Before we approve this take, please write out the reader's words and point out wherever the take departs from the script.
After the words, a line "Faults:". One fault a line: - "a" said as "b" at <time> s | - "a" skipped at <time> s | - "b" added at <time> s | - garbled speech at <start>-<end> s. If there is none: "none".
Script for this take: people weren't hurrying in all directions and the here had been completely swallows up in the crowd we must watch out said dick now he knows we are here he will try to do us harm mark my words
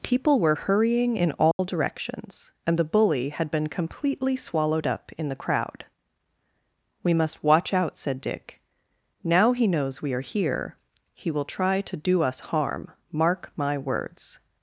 people were hurrying in all directions and the bully had been completely swallowed up in the crowd we must watch out said dick now he knows we are here he will try to do us harm mark my words
Faults:
- "weren't" said as "were" at 0.4 s
- "here" said as "bully" at 2.9 s
- "swallows" said as "swallowed" at 4.4 s